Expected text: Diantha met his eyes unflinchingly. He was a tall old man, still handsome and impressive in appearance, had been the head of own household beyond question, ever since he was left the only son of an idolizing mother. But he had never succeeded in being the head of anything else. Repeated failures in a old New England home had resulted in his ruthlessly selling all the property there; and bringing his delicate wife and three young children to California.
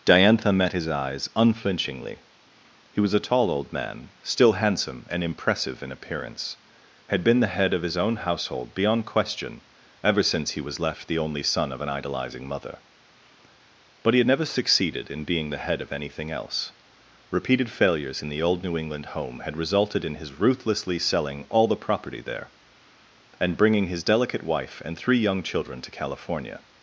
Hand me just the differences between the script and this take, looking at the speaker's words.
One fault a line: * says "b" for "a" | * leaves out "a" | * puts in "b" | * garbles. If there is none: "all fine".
* puts in "his"
* says "the" for "a"